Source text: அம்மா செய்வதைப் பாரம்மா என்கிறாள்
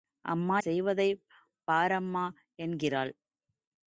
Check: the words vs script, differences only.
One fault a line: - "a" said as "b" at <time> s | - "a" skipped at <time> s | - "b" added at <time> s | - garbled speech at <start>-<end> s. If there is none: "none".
none